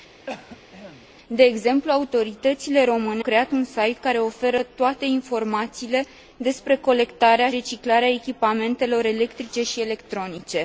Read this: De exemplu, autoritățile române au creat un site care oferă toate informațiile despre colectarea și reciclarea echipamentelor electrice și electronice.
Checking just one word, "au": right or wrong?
wrong